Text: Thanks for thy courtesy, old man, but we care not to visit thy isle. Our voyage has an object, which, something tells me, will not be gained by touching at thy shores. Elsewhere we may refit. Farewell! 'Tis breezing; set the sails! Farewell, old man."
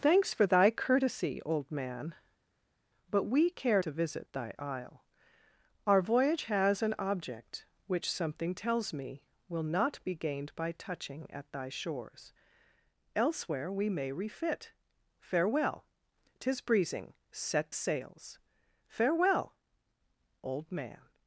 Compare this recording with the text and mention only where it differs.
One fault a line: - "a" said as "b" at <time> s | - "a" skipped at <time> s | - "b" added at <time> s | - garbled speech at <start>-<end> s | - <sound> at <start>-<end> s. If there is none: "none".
- "not" skipped at 3.8 s
- "the" skipped at 17.7 s